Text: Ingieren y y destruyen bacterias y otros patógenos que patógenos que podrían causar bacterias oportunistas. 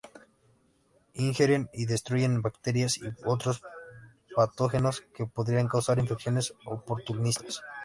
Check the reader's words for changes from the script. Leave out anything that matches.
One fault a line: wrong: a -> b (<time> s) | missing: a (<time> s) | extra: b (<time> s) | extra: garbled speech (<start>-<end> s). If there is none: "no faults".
missing: y (1.9 s)
missing: patógenos que (5.3 s)
wrong: bacterias -> infecciones (6.0 s)